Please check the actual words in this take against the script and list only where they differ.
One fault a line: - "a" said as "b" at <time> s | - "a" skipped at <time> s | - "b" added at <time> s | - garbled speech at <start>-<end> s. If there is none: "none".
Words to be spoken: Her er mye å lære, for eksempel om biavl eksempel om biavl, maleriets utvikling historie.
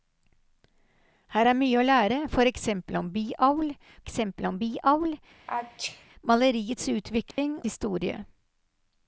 none